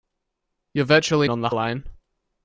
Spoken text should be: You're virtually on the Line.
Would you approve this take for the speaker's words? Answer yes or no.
yes